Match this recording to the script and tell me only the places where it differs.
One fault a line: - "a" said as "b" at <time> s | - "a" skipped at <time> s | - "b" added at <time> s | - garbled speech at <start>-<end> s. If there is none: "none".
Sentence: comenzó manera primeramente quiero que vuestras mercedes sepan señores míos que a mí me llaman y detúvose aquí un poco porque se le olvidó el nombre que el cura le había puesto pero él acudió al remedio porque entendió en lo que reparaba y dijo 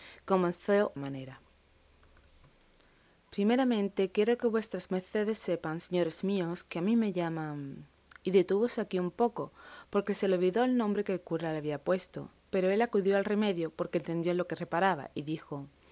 none